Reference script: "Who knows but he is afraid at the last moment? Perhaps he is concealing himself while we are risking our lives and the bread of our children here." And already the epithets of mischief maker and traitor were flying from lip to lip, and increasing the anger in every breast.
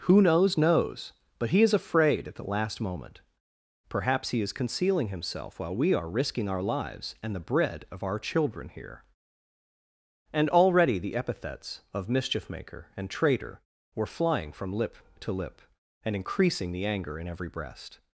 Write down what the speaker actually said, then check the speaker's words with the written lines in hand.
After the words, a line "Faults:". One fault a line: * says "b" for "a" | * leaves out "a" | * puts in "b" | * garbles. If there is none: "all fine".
"Who knows knows but he is afraid at the last moment? Perhaps he is concealing himself while we are risking our lives and the bread of our children here." And already the epithets of mischief maker and traitor were flying from lip to lip, and increasing the anger in every breast.
Faults:
* puts in "knows"